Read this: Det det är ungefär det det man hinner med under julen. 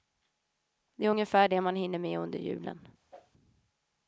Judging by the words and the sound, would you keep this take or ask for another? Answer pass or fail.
fail